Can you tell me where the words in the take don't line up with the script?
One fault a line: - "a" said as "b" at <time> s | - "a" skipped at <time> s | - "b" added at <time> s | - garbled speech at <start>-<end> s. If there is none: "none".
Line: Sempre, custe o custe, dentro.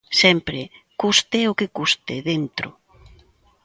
- "que" added at 1.5 s